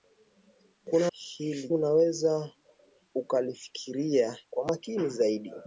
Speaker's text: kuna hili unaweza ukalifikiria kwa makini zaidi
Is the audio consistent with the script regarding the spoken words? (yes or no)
yes